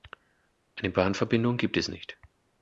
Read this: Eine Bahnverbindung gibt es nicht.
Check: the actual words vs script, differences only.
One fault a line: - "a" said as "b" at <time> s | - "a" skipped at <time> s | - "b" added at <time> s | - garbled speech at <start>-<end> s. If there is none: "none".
none